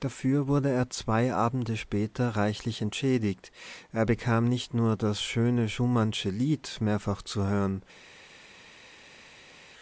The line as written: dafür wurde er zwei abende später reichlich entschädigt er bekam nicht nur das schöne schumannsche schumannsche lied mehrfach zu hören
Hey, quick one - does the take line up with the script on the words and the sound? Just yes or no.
no